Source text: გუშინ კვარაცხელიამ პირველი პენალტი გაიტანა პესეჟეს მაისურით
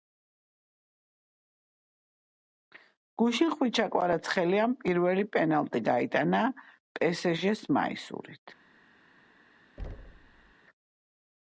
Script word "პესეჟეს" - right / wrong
right